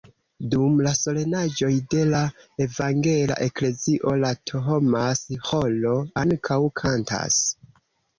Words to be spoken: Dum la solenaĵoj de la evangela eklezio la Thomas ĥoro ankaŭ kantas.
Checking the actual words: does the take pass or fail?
pass